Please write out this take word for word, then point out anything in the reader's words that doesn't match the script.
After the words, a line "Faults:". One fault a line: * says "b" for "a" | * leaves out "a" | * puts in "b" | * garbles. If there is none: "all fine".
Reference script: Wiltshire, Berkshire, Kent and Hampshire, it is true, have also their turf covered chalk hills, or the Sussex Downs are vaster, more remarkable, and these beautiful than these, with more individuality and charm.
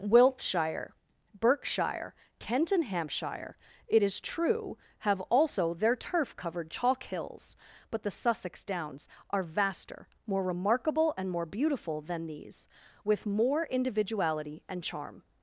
Wiltshire, Berkshire, Kent and Hampshire, it is true, have also their turf covered chalk hills, but the Sussex Downs are vaster, more remarkable, and more beautiful than these, with more individuality and charm.
Faults:
* says "but" for "or"
* says "more" for "these"